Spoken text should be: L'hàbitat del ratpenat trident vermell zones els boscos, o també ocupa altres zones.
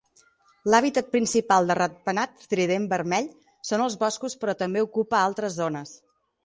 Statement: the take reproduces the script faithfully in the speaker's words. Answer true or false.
false